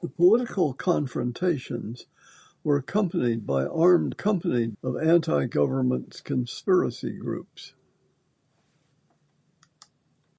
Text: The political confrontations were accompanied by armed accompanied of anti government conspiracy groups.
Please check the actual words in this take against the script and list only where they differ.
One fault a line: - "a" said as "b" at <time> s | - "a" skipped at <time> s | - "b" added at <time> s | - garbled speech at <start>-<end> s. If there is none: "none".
none